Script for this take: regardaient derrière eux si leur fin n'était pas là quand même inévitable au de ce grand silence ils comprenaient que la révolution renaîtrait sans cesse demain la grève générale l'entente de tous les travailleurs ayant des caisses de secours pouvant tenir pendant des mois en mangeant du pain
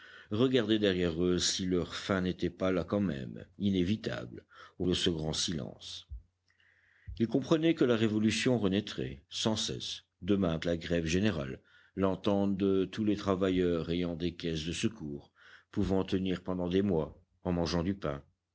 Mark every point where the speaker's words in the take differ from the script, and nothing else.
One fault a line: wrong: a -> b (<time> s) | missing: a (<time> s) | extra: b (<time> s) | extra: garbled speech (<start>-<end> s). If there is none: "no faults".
no faults